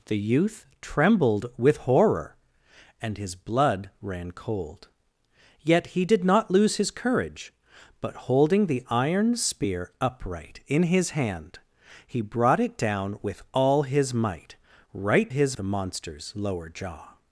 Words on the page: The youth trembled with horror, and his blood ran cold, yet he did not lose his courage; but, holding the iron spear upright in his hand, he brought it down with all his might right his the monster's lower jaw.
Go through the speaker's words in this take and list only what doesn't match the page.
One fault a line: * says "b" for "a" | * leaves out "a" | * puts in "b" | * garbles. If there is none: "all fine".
all fine